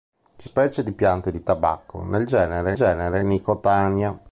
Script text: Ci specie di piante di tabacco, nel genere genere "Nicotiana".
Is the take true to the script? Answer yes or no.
yes